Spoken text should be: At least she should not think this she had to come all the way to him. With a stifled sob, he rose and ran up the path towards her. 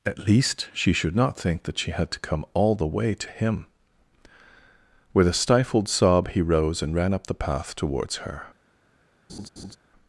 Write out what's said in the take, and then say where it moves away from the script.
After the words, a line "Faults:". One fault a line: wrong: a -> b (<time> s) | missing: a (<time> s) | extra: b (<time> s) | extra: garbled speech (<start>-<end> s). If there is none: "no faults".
At least she should not think that she had to come all the way to him. With a stifled sob, he rose and ran up the path towards her.
Faults:
wrong: this -> that (1.6 s)